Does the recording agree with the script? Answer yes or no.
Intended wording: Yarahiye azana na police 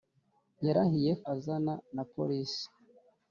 yes